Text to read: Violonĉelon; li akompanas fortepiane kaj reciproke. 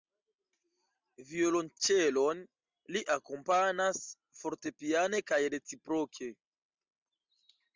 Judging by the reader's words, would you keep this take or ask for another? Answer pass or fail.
pass